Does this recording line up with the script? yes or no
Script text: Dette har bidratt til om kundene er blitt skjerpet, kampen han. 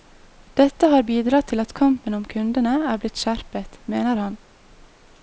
no